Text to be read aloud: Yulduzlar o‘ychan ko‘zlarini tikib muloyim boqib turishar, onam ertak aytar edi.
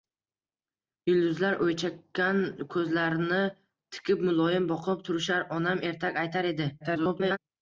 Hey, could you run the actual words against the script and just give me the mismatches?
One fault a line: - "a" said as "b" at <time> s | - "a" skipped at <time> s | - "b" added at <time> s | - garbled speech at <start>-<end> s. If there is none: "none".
- garbled speech at 6.8-7.4 s